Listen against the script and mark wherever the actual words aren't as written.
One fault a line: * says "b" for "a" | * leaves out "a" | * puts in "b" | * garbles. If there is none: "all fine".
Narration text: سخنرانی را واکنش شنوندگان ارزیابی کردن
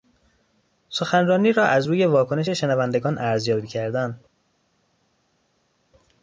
* puts in "از روی"